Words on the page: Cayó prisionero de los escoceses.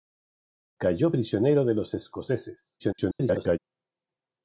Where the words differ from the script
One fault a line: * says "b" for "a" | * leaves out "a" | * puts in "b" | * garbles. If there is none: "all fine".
* garbles